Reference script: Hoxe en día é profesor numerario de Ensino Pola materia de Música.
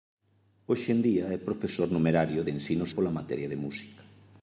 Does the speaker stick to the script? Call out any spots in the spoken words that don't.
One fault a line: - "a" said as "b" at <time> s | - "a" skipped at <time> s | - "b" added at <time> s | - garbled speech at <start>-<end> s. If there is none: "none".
none